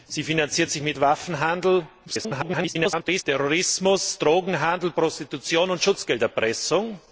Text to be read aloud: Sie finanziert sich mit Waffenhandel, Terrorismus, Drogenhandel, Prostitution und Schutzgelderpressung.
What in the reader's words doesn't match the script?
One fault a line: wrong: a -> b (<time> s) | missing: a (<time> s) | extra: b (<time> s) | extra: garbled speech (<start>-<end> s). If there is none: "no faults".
extra: garbled speech (2.1-3.2 s)